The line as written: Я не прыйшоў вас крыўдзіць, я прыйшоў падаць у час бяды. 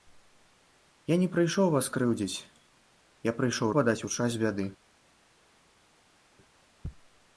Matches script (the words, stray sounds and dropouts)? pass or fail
pass